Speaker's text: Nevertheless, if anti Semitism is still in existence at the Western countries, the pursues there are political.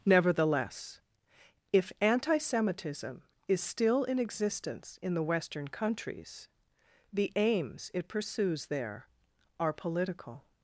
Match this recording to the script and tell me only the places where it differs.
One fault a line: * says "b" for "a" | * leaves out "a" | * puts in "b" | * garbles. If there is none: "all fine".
* says "in" for "at"
* puts in "aims it"